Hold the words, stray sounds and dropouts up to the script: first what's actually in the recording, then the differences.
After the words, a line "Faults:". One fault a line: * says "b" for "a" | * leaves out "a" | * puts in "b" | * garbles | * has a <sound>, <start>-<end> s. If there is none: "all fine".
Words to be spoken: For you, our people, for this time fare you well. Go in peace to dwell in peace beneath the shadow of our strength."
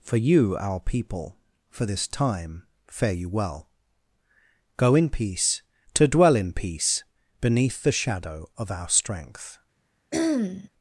For you, our people, for this time fare you well. Go in peace to dwell in peace beneath the shadow of our strength."
Faults:
* has a throat clearing, 10.1-10.7 s